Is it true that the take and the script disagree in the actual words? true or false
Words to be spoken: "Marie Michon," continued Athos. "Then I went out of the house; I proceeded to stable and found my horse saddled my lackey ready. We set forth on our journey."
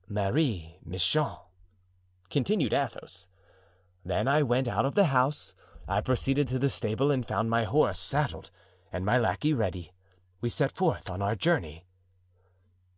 true